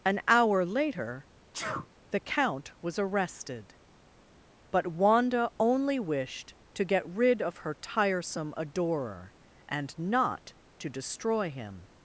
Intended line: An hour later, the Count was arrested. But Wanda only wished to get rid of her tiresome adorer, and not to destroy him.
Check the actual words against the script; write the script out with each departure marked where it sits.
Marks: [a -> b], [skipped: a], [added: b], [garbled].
An hour later, the Count was arrested. But Wanda only wished to get rid of her tiresome adorer, and not to destroy him.